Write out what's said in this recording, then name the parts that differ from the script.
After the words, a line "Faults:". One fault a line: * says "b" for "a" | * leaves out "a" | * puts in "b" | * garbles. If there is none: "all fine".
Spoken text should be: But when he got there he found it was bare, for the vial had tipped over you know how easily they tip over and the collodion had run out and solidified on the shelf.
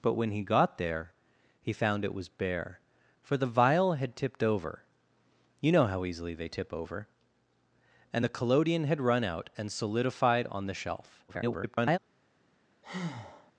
But when he got there he found it was bare, for the vial had tipped over you know how easily they tip over and the collodion had run out and solidified on the shelf. [garbled]
Faults:
* garbles